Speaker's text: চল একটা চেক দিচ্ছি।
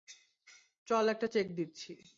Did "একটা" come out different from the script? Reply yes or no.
no